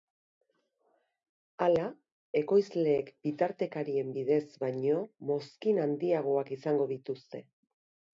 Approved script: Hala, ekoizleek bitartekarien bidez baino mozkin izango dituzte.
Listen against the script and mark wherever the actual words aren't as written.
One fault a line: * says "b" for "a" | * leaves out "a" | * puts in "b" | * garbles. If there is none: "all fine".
* puts in "handiagoak"